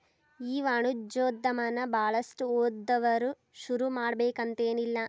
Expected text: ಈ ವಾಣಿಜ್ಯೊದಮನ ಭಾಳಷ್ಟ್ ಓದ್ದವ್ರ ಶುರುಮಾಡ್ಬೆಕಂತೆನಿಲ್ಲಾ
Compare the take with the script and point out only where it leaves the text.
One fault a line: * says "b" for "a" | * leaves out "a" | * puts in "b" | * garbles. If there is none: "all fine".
all fine